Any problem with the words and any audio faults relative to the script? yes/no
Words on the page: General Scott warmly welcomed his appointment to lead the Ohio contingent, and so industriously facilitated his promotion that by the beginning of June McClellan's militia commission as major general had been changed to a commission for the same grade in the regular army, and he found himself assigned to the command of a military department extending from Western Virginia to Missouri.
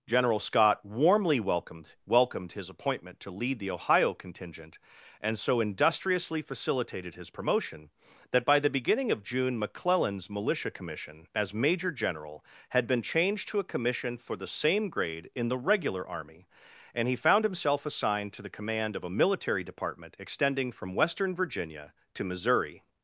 yes